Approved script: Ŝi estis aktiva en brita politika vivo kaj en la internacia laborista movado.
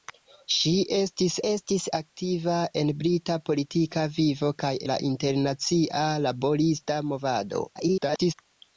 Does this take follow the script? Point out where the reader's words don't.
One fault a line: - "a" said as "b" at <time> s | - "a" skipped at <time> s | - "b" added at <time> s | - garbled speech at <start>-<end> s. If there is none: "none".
- "estis" added at 1.5 s
- "en" skipped at 4.7 s
- garbled speech at 7.7-8.3 s